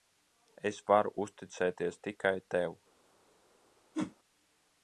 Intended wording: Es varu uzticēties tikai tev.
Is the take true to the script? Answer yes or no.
yes